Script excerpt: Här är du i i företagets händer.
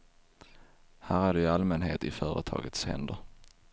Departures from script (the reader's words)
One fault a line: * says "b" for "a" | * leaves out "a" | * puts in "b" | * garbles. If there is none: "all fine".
* puts in "allmänhet"